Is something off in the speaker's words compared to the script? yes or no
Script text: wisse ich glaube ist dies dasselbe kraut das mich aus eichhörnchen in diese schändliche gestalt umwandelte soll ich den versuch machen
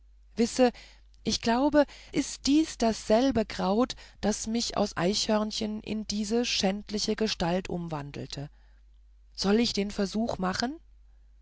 no